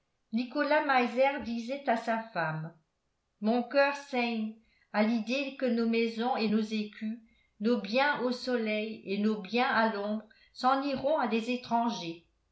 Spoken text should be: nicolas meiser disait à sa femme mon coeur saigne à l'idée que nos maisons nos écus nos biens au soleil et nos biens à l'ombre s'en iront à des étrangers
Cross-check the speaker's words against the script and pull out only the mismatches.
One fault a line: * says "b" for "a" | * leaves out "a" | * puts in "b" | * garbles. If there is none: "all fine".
* puts in "et"